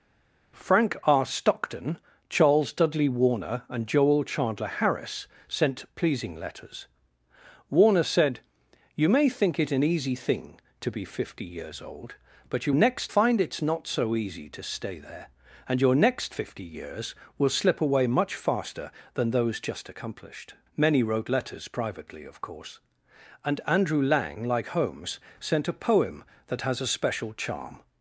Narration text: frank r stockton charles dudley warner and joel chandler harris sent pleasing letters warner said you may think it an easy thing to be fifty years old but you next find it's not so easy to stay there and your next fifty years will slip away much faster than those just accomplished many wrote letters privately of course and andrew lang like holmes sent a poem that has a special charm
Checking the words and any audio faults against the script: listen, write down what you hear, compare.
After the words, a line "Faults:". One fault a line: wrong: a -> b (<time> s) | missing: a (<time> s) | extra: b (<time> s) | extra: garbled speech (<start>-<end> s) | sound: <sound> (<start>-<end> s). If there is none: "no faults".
frank r stockton charles dudley warner and joel chandler harris sent pleasing letters warner said you may think it an easy thing to be fifty years old but you next find it's not so easy to stay there and your next fifty years will slip away much faster than those just accomplished many wrote letters privately of course and andrew lang like holmes sent a poem that has a special charm
Faults:
no faults